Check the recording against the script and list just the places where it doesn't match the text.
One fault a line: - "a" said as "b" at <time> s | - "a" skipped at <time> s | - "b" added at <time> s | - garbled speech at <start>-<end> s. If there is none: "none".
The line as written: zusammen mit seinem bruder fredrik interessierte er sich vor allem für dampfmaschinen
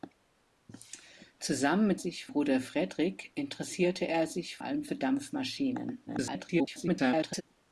- "seinem" said as "sich" at 1.9 s
- "vor" skipped at 4.6 s
- garbled speech at 6.1-7.4 s